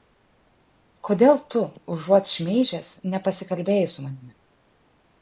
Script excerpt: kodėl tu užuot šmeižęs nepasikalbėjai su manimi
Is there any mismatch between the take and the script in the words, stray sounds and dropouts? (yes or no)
no